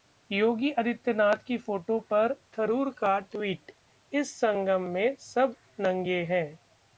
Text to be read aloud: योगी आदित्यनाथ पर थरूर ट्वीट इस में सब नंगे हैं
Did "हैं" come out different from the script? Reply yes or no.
no